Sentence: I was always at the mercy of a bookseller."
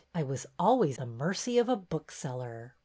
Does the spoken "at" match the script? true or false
false